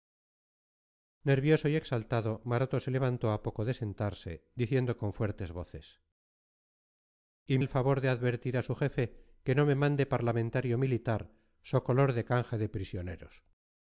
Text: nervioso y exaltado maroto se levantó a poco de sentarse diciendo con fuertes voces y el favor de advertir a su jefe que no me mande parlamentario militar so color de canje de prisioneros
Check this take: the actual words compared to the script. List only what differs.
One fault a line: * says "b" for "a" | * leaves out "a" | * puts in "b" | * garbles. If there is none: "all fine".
all fine